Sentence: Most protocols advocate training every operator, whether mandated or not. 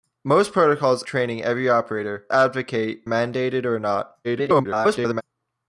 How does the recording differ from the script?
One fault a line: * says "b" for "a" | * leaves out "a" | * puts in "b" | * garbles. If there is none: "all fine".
* leaves out "advocate"
* says "advocate" for "whether"
* garbles